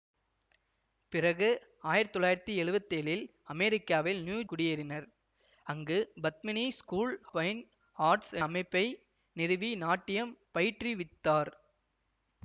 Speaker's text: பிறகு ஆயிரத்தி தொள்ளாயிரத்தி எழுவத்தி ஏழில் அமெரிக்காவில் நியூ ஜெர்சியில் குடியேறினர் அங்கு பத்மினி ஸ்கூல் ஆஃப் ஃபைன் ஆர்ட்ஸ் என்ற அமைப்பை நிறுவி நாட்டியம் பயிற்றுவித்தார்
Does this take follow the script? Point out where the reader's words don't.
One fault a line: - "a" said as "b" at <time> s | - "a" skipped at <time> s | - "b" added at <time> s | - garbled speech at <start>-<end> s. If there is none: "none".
- "ஜெர்சியில்" skipped at 4.4 s
- "ஆஃப்" skipped at 7.1 s
- "என்ற" skipped at 8.3 s